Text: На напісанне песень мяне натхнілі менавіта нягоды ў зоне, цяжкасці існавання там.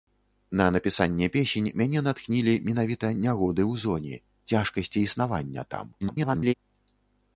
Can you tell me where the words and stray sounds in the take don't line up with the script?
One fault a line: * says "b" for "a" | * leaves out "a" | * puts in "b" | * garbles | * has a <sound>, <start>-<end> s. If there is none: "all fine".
* garbles